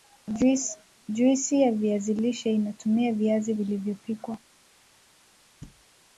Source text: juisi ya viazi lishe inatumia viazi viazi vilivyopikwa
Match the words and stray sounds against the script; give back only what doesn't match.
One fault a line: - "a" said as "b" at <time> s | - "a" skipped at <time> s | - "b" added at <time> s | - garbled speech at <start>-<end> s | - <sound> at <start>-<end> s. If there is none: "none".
- "viazi" skipped at 3.5 s
- thud at 5.6-5.8 s